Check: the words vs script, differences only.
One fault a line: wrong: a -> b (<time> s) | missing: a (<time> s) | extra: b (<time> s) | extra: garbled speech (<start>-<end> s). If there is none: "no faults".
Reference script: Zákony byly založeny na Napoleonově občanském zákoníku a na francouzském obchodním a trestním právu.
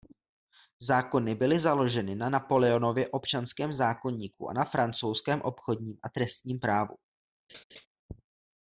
no faults